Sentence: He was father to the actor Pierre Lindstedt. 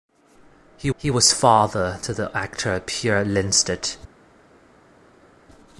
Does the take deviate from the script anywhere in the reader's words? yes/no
yes